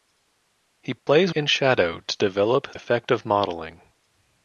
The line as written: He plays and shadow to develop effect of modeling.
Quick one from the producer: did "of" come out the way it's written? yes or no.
yes